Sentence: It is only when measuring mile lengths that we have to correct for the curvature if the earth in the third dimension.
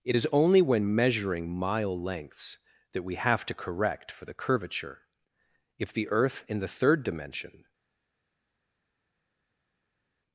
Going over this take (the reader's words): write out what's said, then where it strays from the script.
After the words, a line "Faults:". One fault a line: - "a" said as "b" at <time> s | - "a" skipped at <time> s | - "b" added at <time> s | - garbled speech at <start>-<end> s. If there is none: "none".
It is only when measuring mile lengths that we have to correct for the curvature if the earth in the third dimension.
Faults:
none